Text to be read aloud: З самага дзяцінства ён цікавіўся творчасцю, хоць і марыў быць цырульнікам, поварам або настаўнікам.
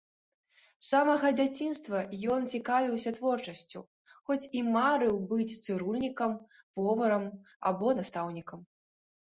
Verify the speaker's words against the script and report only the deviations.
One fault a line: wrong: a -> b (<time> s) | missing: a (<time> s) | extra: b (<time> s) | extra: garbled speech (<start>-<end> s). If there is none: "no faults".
no faults